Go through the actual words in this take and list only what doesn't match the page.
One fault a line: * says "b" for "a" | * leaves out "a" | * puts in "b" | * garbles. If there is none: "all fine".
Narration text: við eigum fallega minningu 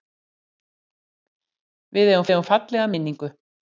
* puts in "eigum"